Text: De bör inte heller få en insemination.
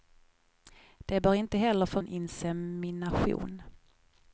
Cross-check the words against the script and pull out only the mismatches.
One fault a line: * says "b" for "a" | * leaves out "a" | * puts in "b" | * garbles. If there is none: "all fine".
all fine